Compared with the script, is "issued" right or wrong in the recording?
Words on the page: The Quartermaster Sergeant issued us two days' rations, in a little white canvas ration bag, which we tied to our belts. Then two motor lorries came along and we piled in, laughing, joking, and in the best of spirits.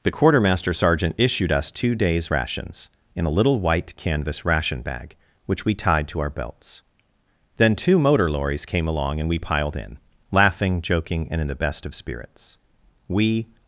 right